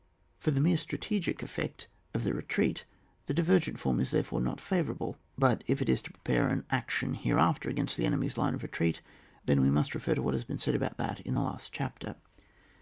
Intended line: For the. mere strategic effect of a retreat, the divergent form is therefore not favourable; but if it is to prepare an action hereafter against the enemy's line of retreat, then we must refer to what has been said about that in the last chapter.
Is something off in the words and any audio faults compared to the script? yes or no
yes